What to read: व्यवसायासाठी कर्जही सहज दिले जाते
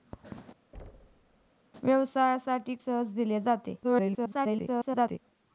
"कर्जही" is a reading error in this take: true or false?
true